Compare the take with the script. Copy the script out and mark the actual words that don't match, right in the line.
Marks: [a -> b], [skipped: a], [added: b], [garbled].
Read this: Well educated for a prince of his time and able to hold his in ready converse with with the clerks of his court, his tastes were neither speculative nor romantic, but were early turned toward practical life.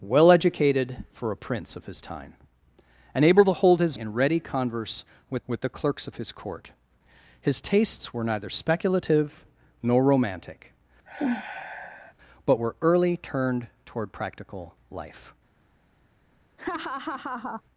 Well educated for a prince of his time and able to hold his in ready converse with with the clerks of his court, his tastes were neither speculative nor romantic, but were early turned toward practical life.